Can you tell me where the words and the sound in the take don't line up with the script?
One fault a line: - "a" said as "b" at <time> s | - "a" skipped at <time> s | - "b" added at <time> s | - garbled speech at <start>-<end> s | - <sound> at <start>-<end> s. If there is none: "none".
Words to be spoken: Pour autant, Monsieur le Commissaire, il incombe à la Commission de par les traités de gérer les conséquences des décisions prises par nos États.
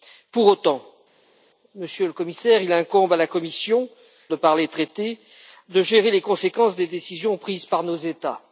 none